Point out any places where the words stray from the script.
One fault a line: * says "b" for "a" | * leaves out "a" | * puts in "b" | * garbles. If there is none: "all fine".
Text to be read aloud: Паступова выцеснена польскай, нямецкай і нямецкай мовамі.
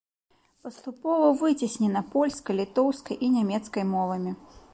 * says "літоўскай" for "нямецкай"